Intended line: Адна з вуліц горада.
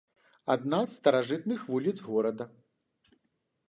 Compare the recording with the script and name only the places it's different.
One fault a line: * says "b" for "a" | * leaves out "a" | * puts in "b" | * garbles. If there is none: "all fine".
* puts in "старажытных"